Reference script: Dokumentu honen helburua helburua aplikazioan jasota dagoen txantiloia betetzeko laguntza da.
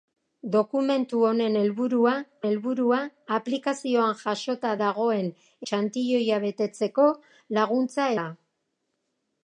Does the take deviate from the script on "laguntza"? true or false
false